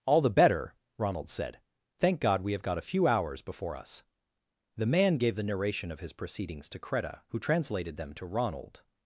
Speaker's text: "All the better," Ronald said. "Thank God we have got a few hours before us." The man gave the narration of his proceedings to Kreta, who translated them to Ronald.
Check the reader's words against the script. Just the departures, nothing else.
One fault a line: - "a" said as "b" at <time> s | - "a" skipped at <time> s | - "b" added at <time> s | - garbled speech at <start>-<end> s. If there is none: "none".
none